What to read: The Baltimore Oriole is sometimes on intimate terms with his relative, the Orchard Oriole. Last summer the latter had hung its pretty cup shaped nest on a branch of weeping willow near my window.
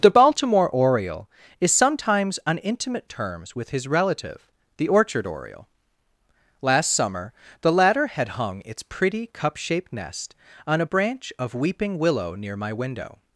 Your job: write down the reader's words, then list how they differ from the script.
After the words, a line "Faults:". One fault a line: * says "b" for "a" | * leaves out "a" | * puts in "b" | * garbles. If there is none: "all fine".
The Baltimore Oriole is sometimes on intimate terms with his relative, the Orchard Oriole. Last summer the latter had hung its pretty cup shaped nest on a branch of weeping willow near my window.
Faults:
all fine